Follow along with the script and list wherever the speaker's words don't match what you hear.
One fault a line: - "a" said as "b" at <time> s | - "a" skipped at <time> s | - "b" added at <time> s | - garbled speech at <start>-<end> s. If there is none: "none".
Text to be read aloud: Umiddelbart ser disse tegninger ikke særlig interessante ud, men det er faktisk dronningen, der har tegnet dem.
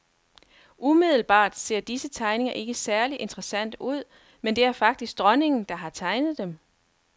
none